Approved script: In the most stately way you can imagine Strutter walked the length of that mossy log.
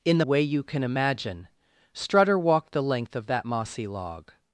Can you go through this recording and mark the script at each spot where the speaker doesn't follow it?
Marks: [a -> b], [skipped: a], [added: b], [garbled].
In the [skipped: most stately] way you can imagine Strutter walked the length of that mossy log.